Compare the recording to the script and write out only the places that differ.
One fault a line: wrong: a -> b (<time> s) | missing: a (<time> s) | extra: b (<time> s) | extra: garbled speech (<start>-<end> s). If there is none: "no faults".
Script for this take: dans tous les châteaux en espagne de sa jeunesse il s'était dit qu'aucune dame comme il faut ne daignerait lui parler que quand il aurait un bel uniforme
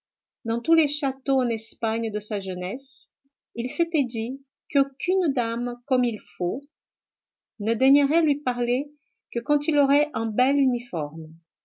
no faults